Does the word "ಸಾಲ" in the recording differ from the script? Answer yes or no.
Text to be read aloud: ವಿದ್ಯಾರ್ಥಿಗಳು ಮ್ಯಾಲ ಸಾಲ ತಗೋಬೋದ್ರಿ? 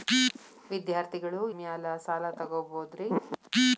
no